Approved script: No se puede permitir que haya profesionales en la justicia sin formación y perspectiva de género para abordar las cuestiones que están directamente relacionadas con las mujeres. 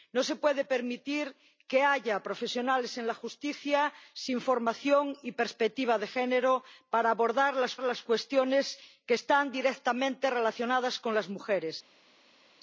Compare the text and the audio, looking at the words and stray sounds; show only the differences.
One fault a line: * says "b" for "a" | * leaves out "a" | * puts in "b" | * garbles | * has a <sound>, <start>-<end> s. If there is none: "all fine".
* puts in "las"